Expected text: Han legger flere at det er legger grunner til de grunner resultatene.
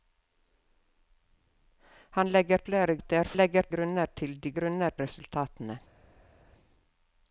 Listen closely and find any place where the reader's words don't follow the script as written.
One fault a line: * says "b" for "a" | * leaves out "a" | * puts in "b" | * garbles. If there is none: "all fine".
all fine